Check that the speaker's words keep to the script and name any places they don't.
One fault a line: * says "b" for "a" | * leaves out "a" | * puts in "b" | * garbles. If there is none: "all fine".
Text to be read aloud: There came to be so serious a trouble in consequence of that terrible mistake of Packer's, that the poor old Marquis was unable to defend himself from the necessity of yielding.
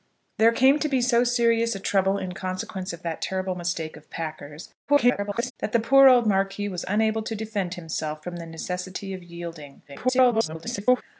* garbles
* garbles